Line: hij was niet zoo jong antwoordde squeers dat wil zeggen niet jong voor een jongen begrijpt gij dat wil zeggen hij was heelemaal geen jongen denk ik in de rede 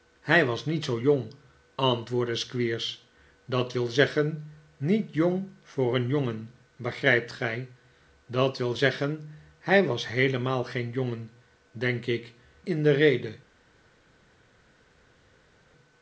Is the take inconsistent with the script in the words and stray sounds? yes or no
no